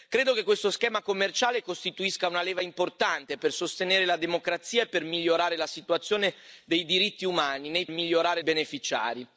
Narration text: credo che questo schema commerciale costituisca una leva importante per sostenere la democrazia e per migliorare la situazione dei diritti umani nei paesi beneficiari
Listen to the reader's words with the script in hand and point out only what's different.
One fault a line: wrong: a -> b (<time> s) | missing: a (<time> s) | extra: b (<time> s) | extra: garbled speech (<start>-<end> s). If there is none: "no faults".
wrong: paesi -> migliorare (7.9 s)